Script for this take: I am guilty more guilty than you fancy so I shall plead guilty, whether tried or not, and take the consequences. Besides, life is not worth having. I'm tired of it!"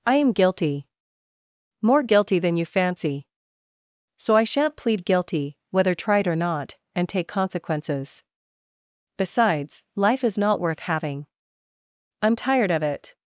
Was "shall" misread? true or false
true